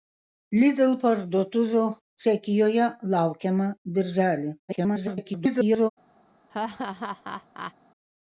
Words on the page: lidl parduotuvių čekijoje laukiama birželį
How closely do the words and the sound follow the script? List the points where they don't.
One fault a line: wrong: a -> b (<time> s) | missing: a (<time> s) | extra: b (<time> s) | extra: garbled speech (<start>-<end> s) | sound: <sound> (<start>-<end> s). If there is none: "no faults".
extra: garbled speech (4.7-5.9 s)
sound: laugh (6.5-7.7 s)